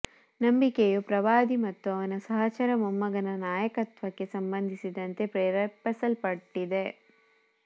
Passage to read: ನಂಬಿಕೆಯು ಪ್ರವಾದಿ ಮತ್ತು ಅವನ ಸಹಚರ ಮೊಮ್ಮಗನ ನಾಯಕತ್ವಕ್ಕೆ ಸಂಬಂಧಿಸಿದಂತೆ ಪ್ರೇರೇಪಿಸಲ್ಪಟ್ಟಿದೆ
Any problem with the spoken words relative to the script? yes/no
no